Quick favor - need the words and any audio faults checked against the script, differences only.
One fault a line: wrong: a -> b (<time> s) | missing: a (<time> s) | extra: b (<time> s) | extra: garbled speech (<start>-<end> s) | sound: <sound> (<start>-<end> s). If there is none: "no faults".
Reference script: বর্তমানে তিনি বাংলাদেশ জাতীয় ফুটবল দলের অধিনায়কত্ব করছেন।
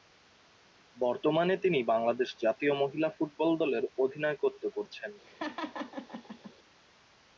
extra: মহিলা (2.7 s)
sound: laugh (5.2-6.5 s)